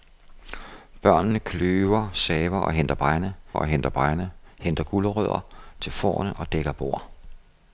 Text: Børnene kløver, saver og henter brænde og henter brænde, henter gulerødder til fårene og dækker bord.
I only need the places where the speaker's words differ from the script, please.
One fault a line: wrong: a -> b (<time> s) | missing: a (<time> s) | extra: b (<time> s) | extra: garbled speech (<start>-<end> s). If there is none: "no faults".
no faults